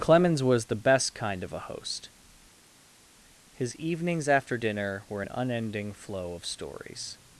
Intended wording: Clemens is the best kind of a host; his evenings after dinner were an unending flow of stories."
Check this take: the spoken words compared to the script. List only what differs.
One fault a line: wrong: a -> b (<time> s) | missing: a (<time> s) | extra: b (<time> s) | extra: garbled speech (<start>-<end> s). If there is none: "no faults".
wrong: is -> was (0.4 s)